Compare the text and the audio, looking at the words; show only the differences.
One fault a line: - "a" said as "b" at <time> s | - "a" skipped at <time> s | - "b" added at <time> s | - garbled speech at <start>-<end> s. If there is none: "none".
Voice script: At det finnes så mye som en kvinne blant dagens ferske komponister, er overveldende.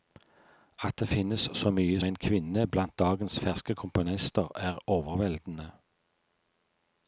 - "som" skipped at 2.0 s